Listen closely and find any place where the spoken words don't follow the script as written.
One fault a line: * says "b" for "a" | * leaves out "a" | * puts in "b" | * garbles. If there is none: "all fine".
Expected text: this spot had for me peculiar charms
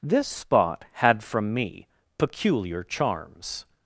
* says "from" for "for"